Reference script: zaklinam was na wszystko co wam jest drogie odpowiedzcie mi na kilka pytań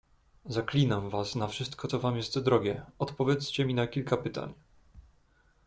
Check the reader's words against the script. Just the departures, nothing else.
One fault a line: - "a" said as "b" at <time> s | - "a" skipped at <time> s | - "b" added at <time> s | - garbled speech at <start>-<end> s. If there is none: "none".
none